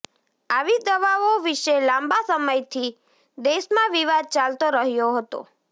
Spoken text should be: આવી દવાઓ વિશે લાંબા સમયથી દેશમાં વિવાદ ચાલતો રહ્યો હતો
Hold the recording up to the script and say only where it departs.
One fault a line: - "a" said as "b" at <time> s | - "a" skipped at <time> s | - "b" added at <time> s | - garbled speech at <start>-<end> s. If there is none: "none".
none